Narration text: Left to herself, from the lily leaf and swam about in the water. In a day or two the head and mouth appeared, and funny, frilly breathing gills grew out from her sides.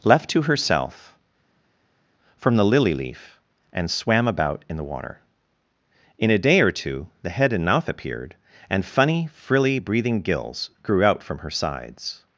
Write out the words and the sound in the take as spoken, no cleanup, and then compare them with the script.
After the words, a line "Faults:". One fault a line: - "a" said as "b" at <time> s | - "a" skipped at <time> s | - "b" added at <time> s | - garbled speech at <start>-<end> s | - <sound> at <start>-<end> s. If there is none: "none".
Left to herself, from the lily leaf and swam about in the water. In a day or two the head and mouth appeared, and funny, frilly breathing gills grew out from her sides.
Faults:
none